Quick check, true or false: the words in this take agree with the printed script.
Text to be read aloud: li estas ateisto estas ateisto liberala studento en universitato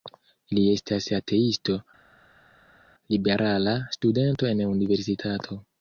false